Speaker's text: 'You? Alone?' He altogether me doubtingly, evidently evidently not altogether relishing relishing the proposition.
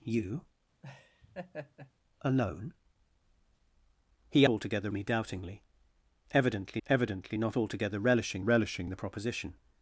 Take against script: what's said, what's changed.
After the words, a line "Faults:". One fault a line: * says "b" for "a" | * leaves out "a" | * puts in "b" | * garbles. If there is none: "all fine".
'You? Alone?' He altogether me doubtingly, evidently evidently not altogether relishing relishing the proposition.
Faults:
all fine